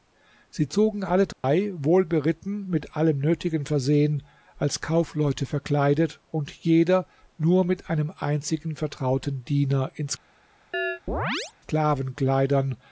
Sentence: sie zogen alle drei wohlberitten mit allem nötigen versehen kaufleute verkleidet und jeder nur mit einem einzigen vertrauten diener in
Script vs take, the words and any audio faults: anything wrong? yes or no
yes